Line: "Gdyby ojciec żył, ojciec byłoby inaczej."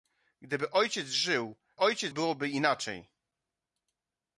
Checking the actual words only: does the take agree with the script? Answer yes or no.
yes